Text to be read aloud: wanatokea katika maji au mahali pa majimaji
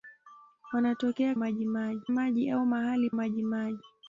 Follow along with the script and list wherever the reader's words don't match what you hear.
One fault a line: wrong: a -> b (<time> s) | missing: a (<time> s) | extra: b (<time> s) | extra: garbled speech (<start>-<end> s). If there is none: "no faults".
wrong: katika -> majimaji (1.4 s)
missing: pa (3.1 s)